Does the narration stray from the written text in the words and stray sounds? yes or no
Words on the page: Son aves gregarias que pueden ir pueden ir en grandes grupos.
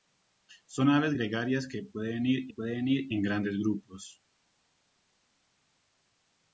no